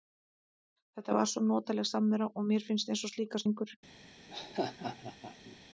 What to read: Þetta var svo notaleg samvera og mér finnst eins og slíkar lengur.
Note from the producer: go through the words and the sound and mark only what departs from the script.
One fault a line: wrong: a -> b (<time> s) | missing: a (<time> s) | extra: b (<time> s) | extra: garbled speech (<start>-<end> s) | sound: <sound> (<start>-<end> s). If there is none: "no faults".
sound: laugh (4.3-5.6 s)